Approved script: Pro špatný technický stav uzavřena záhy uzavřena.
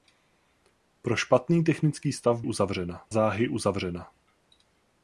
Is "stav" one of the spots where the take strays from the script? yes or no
no